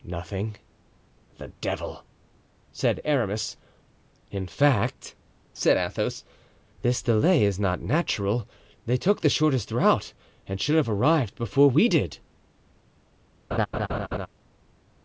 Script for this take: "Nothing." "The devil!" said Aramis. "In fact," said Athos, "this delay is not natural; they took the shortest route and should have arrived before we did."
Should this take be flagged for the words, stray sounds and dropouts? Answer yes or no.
yes